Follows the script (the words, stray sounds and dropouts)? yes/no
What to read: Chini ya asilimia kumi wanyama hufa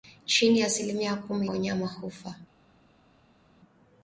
yes